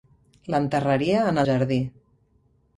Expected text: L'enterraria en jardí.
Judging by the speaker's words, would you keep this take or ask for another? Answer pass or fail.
pass